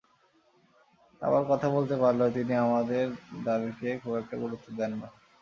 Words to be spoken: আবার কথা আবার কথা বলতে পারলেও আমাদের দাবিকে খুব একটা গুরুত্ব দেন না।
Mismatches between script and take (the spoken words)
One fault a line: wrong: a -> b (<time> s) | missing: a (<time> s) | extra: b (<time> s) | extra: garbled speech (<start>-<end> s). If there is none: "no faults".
missing: আবার কথা (1.7 s)
extra: তিনি (2.4 s)